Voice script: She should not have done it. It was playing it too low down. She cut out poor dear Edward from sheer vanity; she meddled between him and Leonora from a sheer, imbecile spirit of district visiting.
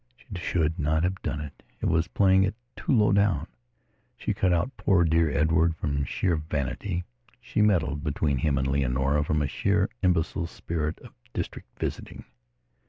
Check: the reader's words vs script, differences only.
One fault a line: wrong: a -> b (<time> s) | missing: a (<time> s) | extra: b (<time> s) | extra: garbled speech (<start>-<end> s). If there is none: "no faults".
no faults